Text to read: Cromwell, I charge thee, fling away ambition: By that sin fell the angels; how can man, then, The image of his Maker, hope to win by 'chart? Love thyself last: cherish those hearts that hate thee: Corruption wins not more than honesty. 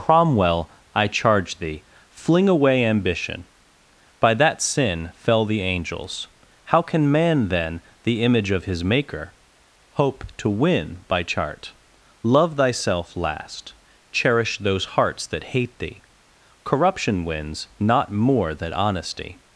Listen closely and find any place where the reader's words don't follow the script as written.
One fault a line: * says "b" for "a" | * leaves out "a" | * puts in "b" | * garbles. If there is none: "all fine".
all fine